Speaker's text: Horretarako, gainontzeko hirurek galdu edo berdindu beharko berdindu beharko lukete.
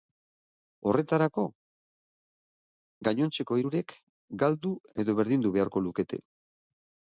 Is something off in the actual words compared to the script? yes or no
yes